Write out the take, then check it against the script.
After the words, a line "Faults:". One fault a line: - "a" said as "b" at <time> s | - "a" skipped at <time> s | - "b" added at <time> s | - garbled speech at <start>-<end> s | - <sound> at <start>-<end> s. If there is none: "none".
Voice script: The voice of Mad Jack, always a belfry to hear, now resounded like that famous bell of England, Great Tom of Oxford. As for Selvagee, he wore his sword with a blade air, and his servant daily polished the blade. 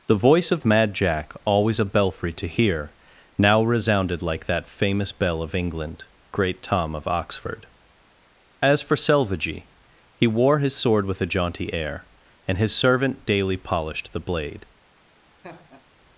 The voice of Mad Jack, always a belfry to hear, now resounded like that famous bell of England, Great Tom of Oxford. As for Selvagee, he wore his sword with a jaunty air, and his servant daily polished the blade.
Faults:
- "blade" said as "jaunty" at 11.3 s
- laugh at 15.4-15.8 s